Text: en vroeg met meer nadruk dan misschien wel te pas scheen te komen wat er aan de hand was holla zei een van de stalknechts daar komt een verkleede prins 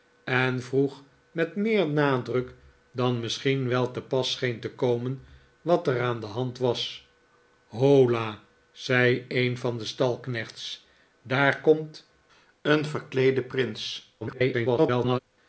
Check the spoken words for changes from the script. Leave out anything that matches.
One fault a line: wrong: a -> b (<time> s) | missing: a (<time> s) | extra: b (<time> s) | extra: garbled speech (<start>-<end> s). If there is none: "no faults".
extra: garbled speech (14.2-15.2 s)